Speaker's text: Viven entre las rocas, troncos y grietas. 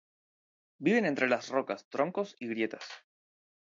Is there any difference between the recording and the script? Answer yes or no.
no